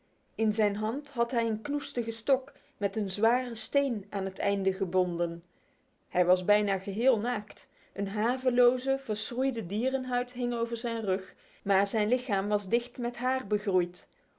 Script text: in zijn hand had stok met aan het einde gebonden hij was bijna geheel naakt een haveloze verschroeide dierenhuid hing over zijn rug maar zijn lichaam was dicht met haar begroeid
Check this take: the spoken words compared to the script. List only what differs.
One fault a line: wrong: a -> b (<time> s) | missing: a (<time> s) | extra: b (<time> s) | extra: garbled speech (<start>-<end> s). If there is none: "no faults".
extra: hij een knoestige (1.3 s)
extra: een zware steen (3.0 s)